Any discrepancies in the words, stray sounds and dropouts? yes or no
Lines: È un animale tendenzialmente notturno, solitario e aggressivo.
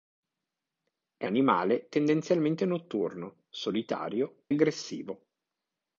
yes